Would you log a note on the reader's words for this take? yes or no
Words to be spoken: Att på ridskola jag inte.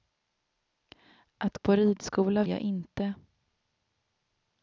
no